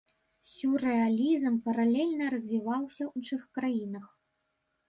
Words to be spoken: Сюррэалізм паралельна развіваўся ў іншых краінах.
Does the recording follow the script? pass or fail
fail